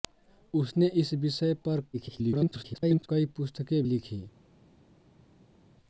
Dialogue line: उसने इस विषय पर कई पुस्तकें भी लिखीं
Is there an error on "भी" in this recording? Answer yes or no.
yes